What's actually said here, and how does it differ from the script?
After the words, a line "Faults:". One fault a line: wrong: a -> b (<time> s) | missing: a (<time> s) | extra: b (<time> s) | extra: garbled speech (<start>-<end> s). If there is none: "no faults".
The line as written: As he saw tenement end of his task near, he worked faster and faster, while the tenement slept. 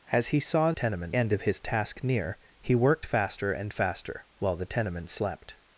As he saw tenement end of his task near, he worked faster and faster, while the tenement slept.
Faults:
no faults